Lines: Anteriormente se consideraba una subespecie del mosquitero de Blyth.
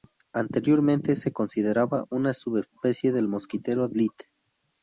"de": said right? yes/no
no